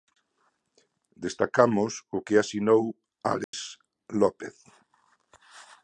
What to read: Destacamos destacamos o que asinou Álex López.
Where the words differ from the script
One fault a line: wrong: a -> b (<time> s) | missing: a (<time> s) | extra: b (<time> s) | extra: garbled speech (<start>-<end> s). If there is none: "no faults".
missing: destacamos (1.9 s)